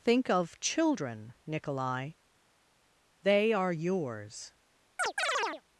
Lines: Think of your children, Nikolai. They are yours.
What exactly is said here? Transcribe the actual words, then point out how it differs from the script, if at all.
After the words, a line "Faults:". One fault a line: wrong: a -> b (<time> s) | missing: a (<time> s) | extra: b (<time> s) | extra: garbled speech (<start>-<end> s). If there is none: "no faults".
Think of children, Nikolai. They are yours.
Faults:
missing: your (0.6 s)